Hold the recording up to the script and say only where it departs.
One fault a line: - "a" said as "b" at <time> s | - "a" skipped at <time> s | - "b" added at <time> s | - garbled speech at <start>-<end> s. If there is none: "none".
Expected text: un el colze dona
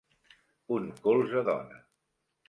none